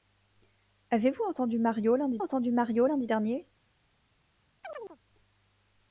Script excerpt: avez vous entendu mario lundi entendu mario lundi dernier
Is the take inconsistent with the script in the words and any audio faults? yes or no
yes